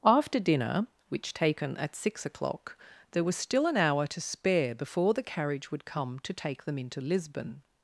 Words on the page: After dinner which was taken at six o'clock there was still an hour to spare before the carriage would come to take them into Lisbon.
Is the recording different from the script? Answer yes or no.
yes